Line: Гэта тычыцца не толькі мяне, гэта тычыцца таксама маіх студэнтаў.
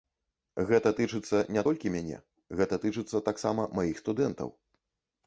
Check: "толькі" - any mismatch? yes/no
no